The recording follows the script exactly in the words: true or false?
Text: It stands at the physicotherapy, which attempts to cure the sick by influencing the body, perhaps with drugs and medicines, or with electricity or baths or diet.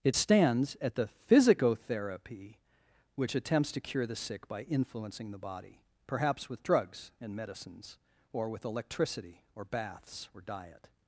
true